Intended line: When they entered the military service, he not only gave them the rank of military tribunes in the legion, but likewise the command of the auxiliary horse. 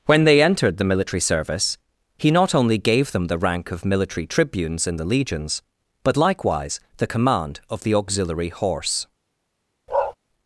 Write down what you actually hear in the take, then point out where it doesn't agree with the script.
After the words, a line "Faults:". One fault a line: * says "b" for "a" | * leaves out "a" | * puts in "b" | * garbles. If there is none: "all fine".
When they entered the military service, he not only gave them the rank of military tribunes in the legions, but likewise the command of the auxiliary horse.
Faults:
* says "legions" for "legion"